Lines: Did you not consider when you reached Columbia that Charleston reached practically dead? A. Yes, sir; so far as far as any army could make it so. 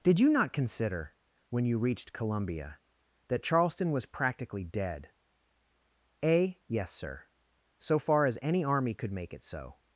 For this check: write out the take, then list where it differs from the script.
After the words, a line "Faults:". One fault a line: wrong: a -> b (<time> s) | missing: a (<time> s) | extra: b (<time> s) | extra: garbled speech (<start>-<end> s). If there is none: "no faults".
Did you not consider when you reached Columbia that Charleston was practically dead? A. Yes, sir; so far as any army could make it so.
Faults:
wrong: reached -> was (3.9 s)
missing: far as (8.4 s)